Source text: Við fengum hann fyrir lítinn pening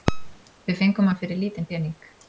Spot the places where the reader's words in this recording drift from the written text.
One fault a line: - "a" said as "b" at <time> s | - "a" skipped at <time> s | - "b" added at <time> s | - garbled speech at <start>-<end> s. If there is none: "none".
none